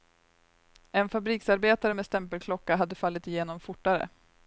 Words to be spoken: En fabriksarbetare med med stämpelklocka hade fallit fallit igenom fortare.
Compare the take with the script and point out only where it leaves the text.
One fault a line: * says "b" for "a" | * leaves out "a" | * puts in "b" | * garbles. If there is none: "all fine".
* leaves out "med"
* leaves out "fallit"